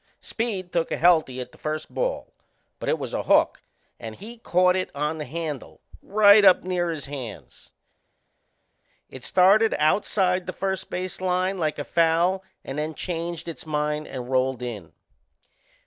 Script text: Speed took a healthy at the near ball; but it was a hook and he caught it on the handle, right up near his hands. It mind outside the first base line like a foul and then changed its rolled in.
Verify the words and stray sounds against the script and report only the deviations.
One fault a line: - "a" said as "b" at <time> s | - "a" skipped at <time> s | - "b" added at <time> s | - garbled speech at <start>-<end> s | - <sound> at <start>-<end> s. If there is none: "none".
- "near" said as "first" at 1.6 s
- "mind" said as "started" at 9.2 s
- "mind and" added at 13.6 s